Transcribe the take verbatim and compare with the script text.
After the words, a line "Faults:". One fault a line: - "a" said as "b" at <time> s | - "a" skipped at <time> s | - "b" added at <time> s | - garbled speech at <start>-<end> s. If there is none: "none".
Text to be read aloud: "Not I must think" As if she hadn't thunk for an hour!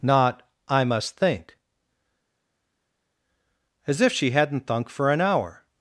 "Not I must think" As if she hadn't thunk for an hour!
Faults:
none